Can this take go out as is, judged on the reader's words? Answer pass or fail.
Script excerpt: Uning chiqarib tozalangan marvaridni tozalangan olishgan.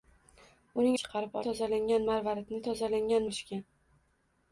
pass